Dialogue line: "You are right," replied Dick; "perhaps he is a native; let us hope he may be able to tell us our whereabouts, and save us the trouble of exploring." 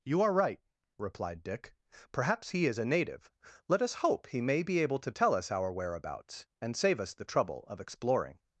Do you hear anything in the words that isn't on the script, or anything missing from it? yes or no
no